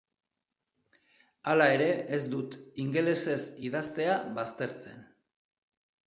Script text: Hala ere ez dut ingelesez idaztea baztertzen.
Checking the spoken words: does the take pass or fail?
pass